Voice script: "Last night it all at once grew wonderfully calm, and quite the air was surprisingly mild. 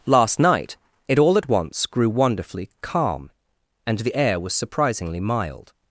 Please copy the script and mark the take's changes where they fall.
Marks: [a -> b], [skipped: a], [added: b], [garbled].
"Last night it all at once grew wonderfully calm, and [skipped: quite] the air was surprisingly mild.